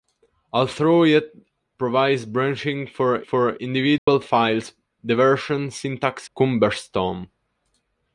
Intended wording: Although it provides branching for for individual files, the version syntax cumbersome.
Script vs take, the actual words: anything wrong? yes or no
no